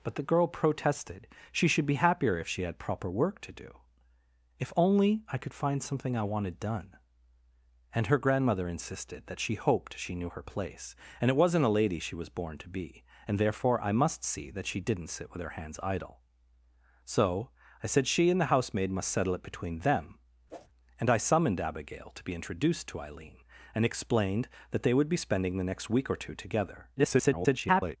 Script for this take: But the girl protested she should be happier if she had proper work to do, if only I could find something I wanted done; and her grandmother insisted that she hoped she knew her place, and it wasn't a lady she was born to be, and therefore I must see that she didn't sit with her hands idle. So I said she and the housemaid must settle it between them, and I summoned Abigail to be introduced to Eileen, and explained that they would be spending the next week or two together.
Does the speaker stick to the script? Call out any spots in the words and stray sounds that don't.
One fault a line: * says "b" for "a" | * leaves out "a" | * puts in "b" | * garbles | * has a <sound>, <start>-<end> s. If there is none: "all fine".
* has a whoosh, 20.5-20.7 s
* garbles